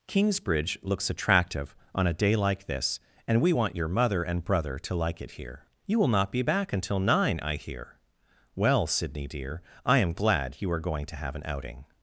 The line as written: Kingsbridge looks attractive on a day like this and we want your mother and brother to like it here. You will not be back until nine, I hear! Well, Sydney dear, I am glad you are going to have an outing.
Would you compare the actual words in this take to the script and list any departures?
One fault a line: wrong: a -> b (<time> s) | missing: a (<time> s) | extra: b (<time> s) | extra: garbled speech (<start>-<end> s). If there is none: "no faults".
no faults